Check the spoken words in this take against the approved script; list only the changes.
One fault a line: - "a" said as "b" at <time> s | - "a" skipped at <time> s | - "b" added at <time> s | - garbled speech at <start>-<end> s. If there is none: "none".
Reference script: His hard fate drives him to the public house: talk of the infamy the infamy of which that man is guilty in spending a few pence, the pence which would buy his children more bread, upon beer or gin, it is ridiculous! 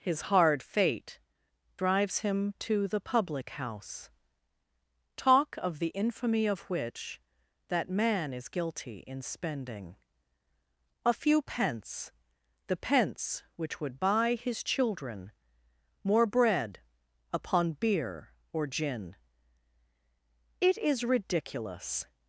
- "the infamy" skipped at 6.5 s